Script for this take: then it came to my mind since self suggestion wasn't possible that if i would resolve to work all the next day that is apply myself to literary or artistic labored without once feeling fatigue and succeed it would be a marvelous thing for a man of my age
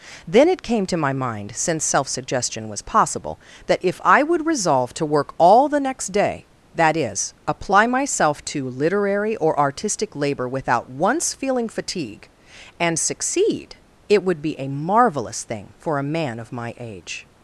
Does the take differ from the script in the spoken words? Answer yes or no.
yes